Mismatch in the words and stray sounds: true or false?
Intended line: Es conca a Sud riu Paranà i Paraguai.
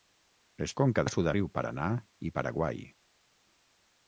false